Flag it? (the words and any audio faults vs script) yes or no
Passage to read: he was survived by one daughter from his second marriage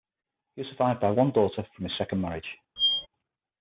yes